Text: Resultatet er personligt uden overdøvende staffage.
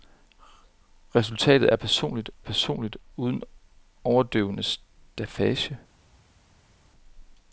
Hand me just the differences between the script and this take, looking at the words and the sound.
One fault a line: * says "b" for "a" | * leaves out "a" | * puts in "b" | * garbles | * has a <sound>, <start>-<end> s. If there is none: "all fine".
* puts in "personligt"